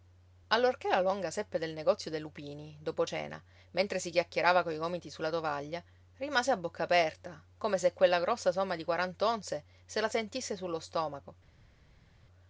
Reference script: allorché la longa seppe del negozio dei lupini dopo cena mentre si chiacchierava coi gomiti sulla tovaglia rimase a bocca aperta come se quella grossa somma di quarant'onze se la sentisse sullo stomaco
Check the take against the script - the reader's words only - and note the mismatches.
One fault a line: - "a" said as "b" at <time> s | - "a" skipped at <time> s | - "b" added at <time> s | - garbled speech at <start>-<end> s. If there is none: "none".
none